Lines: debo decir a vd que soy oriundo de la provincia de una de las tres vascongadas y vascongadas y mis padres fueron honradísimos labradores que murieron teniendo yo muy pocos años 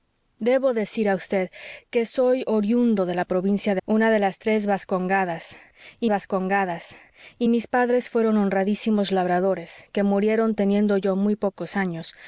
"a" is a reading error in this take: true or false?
false